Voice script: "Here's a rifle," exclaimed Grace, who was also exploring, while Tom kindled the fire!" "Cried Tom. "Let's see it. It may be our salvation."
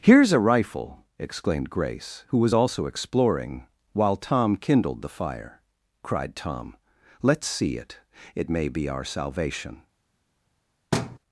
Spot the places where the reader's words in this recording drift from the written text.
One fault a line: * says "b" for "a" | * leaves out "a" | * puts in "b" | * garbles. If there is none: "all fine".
all fine